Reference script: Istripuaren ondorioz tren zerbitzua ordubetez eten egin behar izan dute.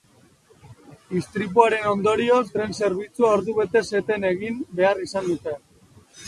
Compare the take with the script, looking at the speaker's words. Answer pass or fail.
pass